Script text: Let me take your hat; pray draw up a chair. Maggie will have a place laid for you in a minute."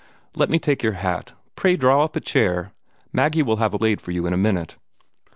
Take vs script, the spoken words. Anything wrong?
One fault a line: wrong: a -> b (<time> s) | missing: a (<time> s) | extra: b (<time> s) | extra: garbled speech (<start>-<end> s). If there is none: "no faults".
missing: place (3.8 s)